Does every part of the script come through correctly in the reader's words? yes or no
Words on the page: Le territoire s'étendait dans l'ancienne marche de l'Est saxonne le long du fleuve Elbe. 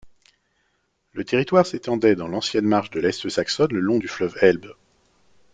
yes